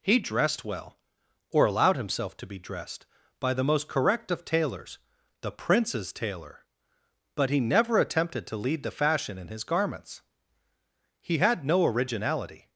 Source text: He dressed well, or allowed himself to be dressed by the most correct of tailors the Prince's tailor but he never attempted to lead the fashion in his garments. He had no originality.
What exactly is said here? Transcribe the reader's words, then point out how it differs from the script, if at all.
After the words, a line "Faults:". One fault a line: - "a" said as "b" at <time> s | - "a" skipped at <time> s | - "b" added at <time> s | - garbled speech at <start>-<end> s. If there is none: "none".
He dressed well, or allowed himself to be dressed by the most correct of tailors the Prince's tailor but he never attempted to lead the fashion in his garments. He had no originality.
Faults:
none